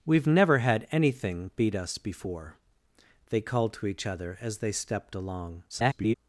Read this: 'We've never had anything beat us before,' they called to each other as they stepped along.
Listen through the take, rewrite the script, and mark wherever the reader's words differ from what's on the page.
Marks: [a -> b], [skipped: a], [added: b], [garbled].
'We've never had anything beat us before,' they called to each other as they stepped along. [garbled]